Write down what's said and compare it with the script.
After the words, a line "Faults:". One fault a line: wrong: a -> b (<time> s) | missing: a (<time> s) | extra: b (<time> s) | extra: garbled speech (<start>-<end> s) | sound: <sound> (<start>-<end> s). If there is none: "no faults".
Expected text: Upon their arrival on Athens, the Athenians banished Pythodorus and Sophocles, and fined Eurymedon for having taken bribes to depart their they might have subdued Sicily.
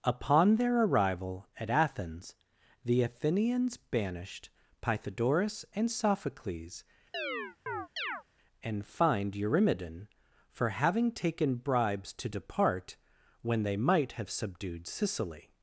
Upon their arrival at Athens, the Athenians banished Pythodorus and Sophocles, and fined Eurymedon for having taken bribes to depart when they might have subdued Sicily.
Faults:
wrong: on -> at (1.6 s)
sound: chirp (7.1-8.2 s)
wrong: their -> when (13.4 s)